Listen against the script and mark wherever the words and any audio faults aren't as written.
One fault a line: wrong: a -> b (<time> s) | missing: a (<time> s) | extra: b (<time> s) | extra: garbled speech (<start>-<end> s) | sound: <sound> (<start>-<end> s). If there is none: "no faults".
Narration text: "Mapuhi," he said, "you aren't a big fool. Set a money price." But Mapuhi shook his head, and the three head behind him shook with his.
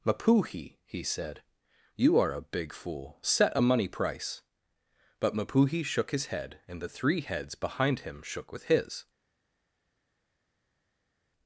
wrong: aren't -> are (2.2 s)
wrong: head -> heads (7.2 s)